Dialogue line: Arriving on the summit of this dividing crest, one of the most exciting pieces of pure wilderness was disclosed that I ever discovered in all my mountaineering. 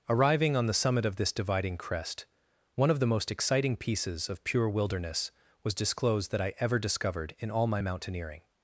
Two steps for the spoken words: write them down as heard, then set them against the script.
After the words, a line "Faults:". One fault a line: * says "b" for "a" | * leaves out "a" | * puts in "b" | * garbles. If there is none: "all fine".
Arriving on the summit of this dividing crest, one of the most exciting pieces of pure wilderness was disclosed that I ever discovered in all my mountaineering.
Faults:
all fine